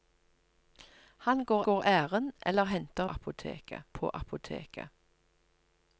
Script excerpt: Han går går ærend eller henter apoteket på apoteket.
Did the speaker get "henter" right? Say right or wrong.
right